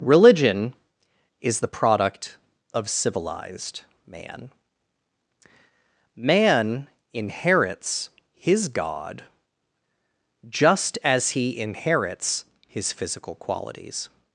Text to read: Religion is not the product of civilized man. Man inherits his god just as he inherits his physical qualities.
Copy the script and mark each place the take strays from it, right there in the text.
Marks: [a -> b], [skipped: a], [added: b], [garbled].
Religion is [skipped: not] the product of civilized man. Man inherits his god just as he inherits his physical qualities.